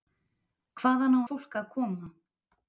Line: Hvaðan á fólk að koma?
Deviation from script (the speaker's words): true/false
false